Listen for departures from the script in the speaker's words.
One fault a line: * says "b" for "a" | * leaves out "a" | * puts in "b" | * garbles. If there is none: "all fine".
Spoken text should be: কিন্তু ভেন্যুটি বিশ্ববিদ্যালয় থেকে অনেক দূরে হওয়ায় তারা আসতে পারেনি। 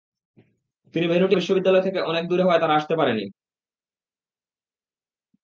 all fine